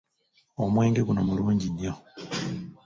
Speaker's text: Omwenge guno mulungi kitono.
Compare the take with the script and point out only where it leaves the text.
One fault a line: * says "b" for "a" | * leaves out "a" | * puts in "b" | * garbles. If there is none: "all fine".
* says "nnyo" for "kitono"